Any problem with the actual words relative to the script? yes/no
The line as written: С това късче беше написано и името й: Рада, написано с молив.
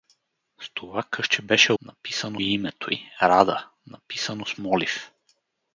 no